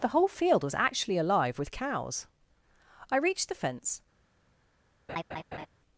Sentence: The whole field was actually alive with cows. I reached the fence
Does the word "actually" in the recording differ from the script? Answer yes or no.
no